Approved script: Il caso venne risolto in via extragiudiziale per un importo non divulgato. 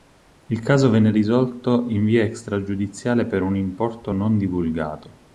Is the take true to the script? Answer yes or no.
yes